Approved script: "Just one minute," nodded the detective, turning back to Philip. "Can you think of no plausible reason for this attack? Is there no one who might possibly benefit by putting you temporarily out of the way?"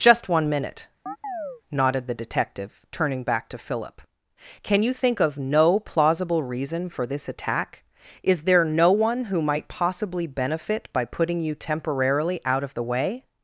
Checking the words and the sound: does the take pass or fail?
fail